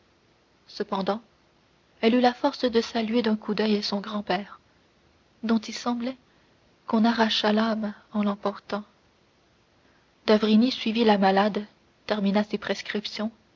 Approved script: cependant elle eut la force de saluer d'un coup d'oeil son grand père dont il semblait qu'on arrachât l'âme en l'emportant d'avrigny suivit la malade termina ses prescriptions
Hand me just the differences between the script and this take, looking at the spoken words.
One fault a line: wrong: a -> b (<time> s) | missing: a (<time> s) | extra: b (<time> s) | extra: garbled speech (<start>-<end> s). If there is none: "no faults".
no faults